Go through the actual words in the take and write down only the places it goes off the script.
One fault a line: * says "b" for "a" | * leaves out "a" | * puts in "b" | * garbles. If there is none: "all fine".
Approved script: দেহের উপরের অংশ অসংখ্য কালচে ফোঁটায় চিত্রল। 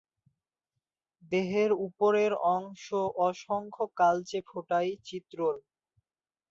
all fine